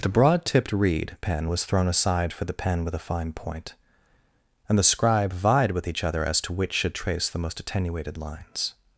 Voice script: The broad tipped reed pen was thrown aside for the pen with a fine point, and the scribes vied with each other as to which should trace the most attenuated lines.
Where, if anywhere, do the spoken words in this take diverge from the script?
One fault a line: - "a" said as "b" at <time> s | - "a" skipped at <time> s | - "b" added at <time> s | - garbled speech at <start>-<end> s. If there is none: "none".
- "scribes" said as "scribe" at 4.8 s